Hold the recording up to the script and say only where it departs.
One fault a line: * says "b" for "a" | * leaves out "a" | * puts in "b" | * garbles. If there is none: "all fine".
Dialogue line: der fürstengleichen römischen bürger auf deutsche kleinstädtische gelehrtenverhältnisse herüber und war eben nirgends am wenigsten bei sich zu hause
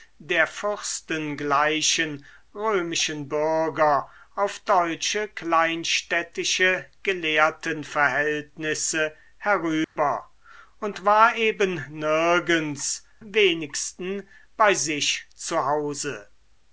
* leaves out "am"